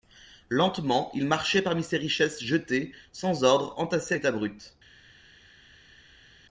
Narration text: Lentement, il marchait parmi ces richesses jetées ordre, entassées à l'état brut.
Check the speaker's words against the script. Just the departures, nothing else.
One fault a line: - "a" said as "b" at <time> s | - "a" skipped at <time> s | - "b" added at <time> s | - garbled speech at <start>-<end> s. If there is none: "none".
- "sans" added at 3.1 s